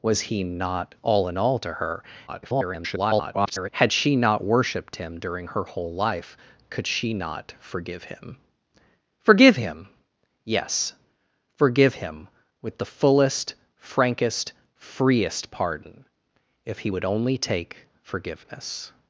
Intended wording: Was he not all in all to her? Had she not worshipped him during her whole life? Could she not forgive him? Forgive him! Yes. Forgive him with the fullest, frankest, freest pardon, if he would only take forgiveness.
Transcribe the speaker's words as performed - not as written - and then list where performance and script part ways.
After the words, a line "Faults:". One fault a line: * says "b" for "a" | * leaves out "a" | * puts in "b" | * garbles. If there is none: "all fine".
Was he not all in all to her? [garbled] Had she not worshipped him during her whole life? Could she not forgive him? Forgive him! Yes. Forgive him with the fullest, frankest, freest pardon, if he would only take forgiveness.
Faults:
* garbles